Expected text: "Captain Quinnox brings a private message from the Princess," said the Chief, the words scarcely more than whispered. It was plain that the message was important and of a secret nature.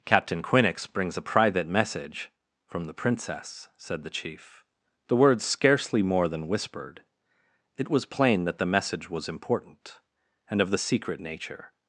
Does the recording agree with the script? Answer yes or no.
no